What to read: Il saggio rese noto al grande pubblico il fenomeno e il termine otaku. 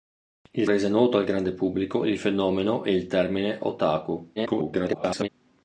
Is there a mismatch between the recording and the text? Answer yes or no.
yes